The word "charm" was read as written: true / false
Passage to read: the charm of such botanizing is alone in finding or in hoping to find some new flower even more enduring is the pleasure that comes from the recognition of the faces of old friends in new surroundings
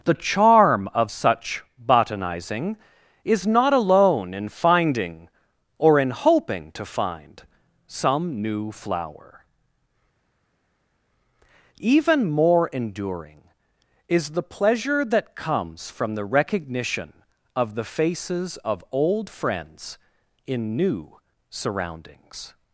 true